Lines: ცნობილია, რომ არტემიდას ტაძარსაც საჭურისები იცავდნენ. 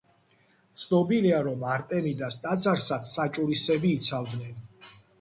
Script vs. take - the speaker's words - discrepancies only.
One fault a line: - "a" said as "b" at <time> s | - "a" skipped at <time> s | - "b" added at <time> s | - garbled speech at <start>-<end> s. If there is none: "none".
none